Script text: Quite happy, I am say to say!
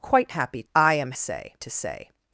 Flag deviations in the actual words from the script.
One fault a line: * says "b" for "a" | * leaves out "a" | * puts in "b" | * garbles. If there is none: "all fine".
all fine